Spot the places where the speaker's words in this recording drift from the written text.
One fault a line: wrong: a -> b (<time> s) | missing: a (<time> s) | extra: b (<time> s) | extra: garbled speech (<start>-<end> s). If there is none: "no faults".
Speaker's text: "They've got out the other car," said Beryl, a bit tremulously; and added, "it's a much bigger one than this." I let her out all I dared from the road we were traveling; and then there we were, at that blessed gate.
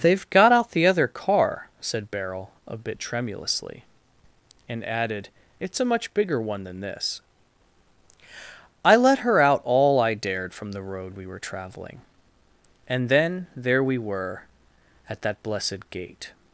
no faults